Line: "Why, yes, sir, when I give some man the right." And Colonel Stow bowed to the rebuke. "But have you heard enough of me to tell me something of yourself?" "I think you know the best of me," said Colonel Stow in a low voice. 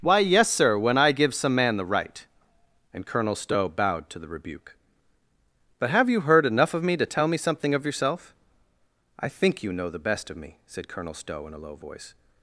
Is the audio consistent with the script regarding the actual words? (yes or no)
yes